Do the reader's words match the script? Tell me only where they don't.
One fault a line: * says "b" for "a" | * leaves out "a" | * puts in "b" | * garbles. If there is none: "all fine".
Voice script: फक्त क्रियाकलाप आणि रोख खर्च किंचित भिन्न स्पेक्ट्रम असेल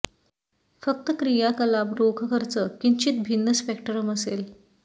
* leaves out "आणि"